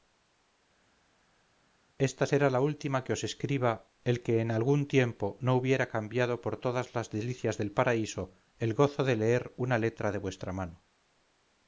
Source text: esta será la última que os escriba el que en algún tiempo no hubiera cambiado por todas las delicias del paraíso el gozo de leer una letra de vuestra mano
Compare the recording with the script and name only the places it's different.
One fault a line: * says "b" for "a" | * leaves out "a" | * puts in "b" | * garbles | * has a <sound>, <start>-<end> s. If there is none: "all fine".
all fine